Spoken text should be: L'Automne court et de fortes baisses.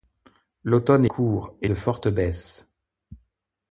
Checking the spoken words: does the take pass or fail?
pass